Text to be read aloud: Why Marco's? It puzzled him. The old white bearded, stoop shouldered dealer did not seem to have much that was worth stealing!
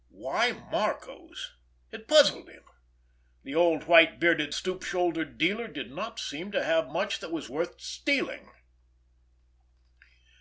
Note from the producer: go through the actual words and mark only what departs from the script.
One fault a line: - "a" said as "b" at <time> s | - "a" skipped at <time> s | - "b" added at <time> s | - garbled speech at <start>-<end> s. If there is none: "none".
none